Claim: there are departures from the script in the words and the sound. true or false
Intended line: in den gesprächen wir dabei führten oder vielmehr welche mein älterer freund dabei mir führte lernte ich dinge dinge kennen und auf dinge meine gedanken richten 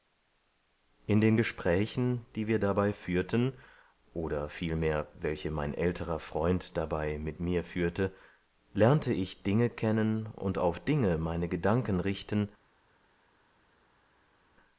true